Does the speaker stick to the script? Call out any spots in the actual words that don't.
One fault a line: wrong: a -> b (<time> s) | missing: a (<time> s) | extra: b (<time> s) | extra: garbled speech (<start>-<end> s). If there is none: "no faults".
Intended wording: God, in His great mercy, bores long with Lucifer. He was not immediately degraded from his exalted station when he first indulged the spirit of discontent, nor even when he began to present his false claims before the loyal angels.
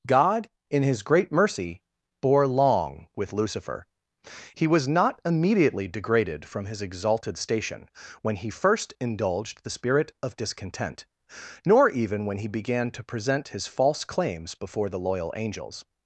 wrong: bores -> bore (2.2 s)